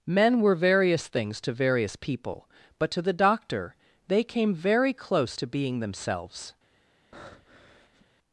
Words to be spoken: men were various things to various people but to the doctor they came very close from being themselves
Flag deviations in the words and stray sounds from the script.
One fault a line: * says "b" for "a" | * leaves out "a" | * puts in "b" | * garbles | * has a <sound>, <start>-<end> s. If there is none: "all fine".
* says "to" for "from"
* has a breath, 7.1-8.1 s